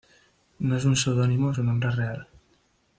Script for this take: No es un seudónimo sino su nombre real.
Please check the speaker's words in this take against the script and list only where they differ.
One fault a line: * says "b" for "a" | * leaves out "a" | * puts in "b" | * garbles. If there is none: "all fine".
* leaves out "sino"